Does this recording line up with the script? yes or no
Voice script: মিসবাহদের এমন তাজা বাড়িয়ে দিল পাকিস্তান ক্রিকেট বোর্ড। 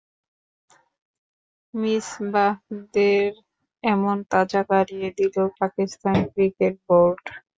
yes